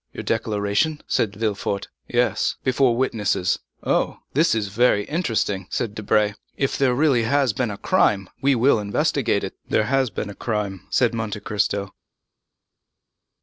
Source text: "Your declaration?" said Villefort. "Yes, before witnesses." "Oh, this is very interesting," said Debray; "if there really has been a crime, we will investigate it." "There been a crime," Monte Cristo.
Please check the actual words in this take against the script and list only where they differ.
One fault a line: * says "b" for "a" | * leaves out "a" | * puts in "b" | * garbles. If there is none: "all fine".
* puts in "has"
* puts in "said"